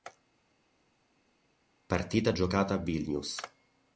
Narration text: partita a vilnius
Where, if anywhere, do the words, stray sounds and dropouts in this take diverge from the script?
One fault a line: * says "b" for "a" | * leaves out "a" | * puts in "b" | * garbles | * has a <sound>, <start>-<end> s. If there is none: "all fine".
* puts in "giocata"